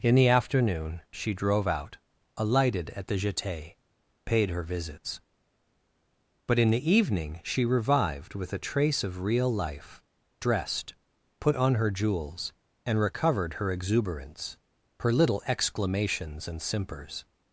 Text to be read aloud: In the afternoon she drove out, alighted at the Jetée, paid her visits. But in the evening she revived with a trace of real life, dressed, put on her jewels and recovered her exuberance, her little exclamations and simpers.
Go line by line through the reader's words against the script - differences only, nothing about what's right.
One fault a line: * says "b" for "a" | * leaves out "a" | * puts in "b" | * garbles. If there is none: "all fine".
all fine